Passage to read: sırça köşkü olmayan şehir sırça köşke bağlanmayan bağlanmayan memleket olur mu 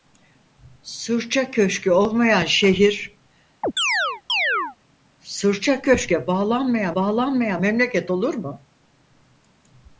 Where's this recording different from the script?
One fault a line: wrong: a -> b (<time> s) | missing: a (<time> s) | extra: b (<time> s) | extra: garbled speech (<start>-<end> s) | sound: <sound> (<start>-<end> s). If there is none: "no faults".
sound: chirp (3.6-4.8 s)